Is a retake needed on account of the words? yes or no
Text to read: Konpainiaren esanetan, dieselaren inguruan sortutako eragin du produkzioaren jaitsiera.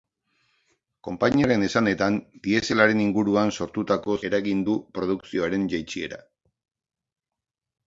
no